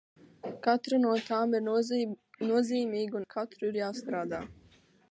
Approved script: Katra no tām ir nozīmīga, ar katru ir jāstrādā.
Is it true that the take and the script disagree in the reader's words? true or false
false